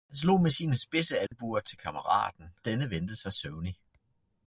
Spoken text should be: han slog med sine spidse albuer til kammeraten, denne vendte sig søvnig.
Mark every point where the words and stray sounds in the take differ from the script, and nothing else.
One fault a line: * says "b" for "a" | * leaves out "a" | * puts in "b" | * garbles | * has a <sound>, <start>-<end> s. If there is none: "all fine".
* has a dropout, 1.3-1.3 s